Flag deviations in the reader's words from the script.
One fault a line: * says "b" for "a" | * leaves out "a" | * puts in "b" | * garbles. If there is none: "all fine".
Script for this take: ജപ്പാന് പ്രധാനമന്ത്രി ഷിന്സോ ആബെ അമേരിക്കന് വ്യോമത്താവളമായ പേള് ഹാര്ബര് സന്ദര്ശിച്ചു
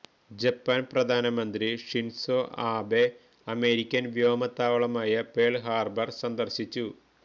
all fine